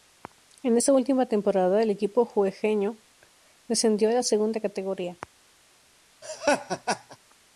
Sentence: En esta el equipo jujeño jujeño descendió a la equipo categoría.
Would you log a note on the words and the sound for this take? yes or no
yes